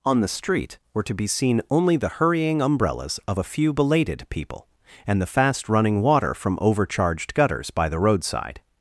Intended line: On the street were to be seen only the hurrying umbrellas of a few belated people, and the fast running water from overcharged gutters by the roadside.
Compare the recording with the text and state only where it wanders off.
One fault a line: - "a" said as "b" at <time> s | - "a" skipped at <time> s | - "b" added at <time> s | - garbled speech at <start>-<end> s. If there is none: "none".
none